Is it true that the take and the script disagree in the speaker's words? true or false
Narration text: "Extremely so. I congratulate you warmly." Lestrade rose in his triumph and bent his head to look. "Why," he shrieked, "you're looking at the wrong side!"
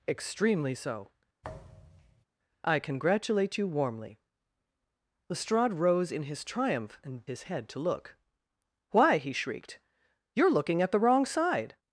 true